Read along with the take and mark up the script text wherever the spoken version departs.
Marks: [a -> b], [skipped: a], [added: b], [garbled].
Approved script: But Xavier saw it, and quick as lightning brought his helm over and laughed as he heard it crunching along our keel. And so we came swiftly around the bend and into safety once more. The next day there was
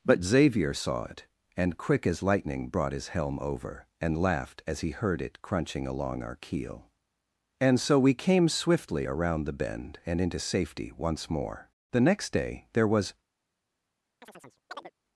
But Xavier saw it, and quick as lightning brought his helm over and laughed as he heard it crunching along our keel. And so we came swiftly around the bend and into safety once more. The next day there was